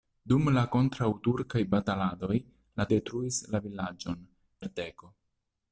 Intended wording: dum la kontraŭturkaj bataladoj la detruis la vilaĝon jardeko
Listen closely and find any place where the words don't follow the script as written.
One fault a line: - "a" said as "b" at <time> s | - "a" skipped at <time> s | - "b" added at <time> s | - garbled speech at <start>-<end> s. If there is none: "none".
none